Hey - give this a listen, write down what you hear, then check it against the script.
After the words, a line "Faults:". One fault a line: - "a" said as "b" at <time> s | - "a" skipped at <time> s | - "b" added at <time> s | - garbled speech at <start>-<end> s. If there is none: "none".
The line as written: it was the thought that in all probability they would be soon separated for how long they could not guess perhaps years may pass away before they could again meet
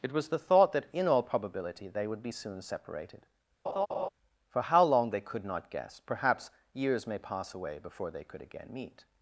it was the thought that in all probability they would be soon separated for how long they could not guess perhaps years may pass away before they could again meet
Faults:
none